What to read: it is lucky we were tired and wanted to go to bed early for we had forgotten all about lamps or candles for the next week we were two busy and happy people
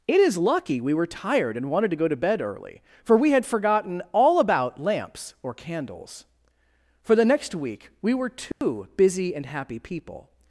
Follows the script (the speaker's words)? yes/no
yes